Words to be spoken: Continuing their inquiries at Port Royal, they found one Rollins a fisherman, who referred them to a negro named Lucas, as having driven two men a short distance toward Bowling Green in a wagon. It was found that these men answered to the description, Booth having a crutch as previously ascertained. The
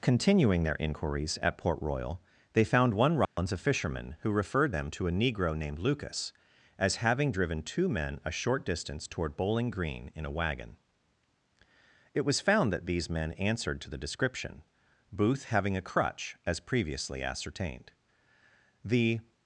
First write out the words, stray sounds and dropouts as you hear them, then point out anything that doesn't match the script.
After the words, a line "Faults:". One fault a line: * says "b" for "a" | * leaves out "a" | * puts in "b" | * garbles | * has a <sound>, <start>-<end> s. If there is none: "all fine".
Continuing their inquiries at Port Royal, they found one Rollins a fisherman, who referred them to a negro named Lucas, as having driven two men a short distance toward Bowling Green in a wagon. It was found that these men answered to the description, Booth having a crutch as previously ascertained. The
Faults:
* has a dropout, 3.2-3.4 s